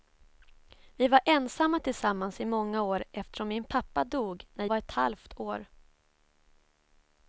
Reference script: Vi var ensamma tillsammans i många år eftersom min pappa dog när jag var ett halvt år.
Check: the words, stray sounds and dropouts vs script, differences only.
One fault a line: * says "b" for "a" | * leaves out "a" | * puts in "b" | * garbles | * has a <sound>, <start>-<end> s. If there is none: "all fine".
* leaves out "jag"